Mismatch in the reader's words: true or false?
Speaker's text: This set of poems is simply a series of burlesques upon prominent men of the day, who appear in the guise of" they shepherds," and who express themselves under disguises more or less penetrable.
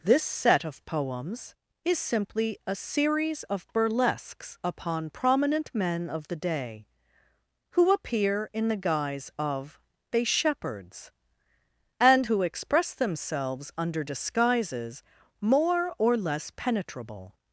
false